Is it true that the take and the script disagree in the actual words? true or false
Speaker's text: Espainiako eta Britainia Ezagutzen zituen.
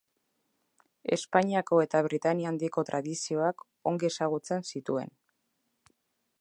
true